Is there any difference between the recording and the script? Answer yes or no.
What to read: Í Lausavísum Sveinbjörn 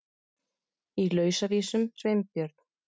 no